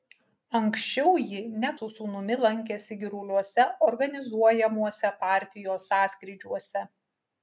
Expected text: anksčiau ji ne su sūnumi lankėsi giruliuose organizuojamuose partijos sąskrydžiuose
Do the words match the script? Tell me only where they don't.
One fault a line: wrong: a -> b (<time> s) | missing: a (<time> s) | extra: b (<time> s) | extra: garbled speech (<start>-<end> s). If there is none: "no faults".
no faults